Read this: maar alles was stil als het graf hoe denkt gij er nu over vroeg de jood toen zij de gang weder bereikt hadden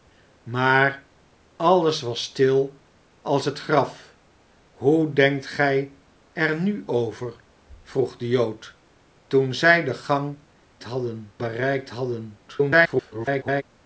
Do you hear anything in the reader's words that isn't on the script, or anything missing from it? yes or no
yes